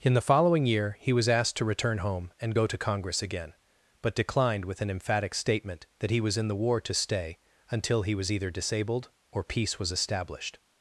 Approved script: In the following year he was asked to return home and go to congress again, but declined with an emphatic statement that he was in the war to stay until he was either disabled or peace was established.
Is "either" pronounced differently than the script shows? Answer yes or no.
no